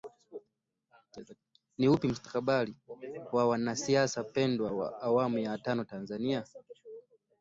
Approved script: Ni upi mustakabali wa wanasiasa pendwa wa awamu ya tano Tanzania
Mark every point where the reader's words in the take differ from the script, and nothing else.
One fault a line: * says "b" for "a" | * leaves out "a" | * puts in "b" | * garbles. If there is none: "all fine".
all fine